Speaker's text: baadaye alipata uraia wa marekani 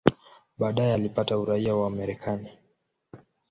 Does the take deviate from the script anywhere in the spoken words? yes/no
no